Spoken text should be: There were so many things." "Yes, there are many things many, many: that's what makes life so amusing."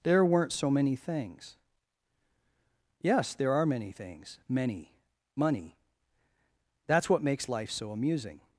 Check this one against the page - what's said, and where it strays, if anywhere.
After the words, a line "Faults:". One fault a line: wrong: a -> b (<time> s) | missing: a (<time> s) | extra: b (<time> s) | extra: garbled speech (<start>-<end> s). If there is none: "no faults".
There weren't so many things." "Yes, there are many things many, money: that's what makes life so amusing."
Faults:
wrong: were -> weren't (0.2 s)
wrong: many -> money (5.4 s)